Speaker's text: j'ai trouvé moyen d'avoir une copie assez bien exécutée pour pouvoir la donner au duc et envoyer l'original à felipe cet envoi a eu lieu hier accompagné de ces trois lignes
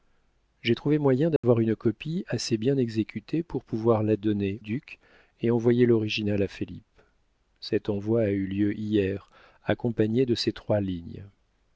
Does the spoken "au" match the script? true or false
false